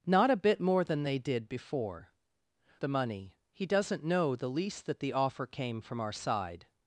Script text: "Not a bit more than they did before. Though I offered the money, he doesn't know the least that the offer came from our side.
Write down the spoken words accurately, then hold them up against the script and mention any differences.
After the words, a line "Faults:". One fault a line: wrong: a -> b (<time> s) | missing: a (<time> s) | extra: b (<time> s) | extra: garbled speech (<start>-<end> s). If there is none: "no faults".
"Not a bit more than they did before. The money, he doesn't know the least that the offer came from our side.
Faults:
missing: Though I offered (2.1 s)